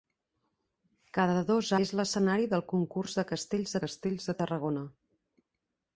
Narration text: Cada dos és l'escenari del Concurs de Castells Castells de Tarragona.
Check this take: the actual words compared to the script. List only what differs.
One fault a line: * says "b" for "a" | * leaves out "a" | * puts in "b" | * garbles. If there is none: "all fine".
all fine